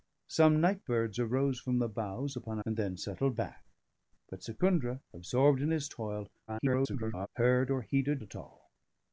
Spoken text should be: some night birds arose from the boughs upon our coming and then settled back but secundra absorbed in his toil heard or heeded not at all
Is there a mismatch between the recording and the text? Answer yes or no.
yes